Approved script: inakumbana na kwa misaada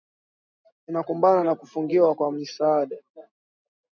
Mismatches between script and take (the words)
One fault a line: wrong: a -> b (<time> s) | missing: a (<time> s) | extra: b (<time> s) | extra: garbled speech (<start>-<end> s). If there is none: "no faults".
extra: kufungiwa (1.6 s)